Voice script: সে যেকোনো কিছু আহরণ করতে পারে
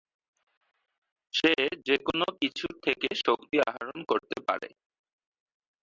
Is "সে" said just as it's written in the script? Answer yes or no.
yes